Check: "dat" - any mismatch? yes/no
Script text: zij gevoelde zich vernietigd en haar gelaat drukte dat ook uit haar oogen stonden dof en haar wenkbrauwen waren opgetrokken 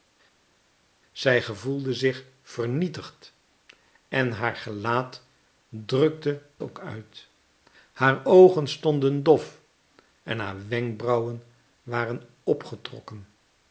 yes